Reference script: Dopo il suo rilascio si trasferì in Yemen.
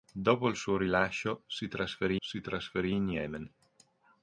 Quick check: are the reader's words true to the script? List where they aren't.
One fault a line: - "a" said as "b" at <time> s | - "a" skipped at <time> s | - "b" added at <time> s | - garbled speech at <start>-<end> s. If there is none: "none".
- "si trasferì" added at 2.2 s